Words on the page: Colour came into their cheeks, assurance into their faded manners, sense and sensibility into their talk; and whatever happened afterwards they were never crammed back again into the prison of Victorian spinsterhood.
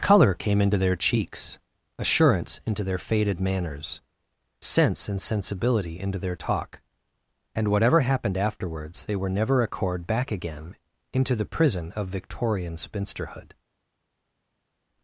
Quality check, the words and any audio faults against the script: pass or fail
fail